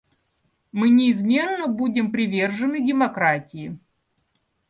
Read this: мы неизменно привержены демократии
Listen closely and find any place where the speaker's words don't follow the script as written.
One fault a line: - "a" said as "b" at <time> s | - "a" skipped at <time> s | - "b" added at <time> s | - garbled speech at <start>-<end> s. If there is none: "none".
- "будем" added at 1.7 s